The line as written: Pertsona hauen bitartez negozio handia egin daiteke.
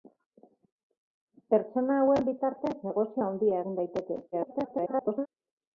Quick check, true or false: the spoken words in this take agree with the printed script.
false